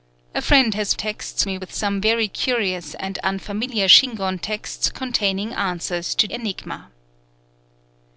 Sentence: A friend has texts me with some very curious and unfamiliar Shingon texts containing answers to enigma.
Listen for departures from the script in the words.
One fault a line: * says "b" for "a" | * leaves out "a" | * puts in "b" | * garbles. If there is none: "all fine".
all fine